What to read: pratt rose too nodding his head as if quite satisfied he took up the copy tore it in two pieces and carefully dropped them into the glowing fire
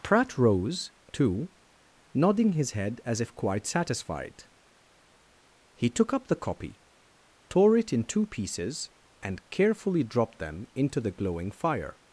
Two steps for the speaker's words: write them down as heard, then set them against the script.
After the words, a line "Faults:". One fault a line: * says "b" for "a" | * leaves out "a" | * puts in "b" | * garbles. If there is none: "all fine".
pratt rose too nodding his head as if quite satisfied he took up the copy tore it in two pieces and carefully dropped them into the glowing fire
Faults:
all fine